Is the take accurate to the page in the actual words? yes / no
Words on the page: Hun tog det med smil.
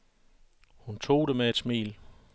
no